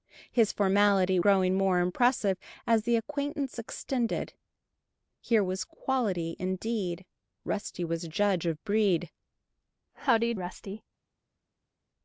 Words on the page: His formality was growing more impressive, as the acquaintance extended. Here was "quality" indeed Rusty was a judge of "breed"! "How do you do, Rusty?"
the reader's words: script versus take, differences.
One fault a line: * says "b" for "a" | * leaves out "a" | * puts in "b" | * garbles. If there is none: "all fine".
* leaves out "was"
* leaves out "do"